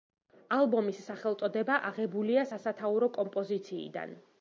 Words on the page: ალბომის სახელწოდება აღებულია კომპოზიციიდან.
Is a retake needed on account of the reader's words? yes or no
yes